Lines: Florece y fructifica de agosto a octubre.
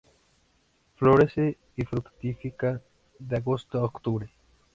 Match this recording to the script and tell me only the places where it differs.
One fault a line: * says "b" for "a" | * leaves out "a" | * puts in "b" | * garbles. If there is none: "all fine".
all fine